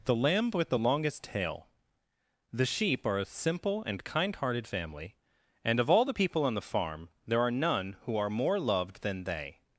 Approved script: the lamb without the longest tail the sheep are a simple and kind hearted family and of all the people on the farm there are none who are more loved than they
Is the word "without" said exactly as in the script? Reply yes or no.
no